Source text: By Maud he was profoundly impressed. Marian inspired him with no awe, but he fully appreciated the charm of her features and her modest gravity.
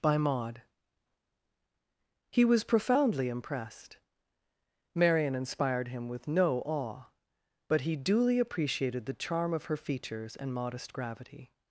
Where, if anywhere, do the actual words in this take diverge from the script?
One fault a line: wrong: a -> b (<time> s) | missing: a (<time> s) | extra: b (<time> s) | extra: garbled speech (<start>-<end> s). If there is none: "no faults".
wrong: fully -> duly (8.0 s)
missing: her (10.5 s)